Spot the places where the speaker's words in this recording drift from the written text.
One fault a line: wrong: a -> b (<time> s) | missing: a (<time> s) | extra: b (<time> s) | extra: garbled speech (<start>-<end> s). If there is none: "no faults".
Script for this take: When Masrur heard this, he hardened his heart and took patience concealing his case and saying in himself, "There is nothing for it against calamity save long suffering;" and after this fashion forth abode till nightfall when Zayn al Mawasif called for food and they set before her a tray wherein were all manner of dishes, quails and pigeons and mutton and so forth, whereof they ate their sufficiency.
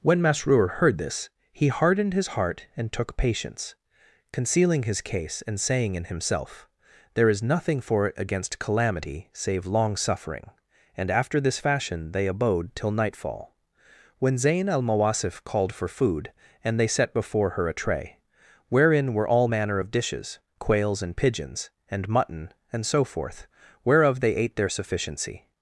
wrong: forth -> they (12.1 s)